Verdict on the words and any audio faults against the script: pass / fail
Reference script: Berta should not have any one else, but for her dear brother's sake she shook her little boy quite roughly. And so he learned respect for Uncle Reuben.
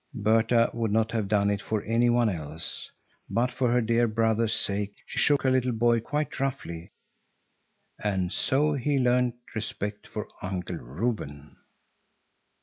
fail